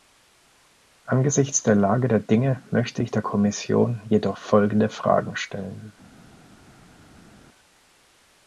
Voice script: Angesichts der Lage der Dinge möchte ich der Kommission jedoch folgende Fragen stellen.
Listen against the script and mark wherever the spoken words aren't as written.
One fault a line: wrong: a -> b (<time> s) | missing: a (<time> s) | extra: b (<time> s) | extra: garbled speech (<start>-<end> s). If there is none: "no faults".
no faults